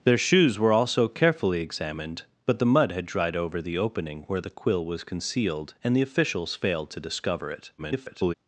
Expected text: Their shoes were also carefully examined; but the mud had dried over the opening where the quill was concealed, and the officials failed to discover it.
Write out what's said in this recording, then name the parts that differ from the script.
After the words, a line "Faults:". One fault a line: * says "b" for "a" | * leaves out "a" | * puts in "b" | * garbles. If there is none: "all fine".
Their shoes were also carefully examined; but the mud had dried over the opening where the quill was concealed, and the officials failed to discover it. [garbled]
Faults:
* garbles